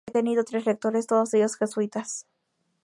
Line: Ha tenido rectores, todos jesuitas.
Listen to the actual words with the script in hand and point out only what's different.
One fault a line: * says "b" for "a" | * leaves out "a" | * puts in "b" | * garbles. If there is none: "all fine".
* puts in "tres"
* puts in "ellos"